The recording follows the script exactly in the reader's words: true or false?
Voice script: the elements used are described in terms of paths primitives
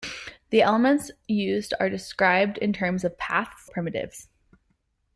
true